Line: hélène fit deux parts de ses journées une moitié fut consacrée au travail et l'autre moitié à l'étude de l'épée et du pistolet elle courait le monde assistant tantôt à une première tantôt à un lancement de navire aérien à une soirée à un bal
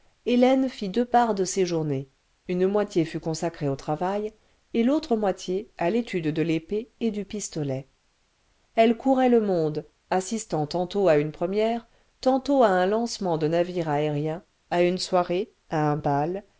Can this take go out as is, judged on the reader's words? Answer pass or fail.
pass